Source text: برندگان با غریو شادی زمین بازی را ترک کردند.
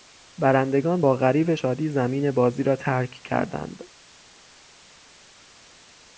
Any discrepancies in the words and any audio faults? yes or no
no